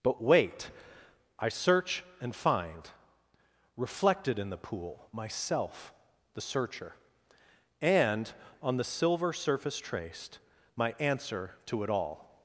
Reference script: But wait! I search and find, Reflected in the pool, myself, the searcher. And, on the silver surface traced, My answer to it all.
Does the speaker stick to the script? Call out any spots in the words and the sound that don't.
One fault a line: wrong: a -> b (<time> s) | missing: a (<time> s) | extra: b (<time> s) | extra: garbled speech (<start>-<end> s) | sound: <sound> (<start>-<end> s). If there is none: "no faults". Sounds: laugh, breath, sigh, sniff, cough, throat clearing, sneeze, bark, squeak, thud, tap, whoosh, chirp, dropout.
no faults